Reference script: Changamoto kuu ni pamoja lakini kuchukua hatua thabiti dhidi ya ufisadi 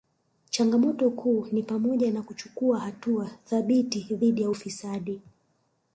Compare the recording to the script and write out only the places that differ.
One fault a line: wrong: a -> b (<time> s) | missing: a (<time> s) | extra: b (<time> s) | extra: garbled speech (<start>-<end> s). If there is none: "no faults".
wrong: lakini -> na (2.1 s)